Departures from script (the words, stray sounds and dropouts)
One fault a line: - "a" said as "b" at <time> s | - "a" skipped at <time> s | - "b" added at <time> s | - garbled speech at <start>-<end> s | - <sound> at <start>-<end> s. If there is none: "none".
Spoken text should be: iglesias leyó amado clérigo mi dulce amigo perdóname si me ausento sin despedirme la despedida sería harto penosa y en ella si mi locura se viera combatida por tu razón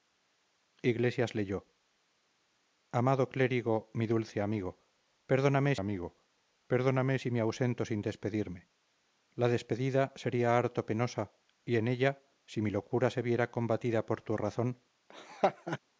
- "amigo perdóname" added at 5.8 s
- laugh at 15.1-15.8 s